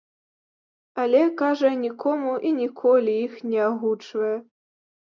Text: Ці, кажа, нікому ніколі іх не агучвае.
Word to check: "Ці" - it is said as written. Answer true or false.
false